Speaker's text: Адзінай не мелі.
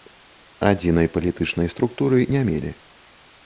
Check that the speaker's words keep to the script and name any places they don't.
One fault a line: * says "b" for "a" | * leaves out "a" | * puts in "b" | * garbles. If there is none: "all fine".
* puts in "палітычнай структуры"